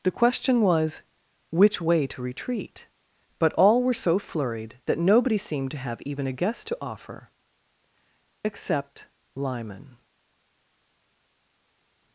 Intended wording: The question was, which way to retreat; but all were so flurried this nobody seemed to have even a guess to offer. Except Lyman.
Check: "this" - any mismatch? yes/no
yes